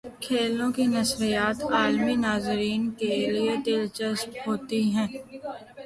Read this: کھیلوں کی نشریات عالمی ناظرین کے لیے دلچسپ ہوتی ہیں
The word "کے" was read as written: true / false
true